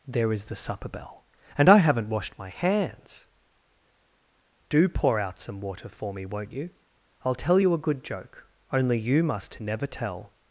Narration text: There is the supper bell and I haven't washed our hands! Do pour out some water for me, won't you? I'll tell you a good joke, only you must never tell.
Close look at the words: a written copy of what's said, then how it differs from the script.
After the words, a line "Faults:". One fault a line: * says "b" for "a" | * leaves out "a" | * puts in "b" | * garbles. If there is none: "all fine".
There is the supper bell and I haven't washed my hands! Do pour out some water for me, won't you? I'll tell you a good joke, only you must never tell.
Faults:
* says "my" for "our"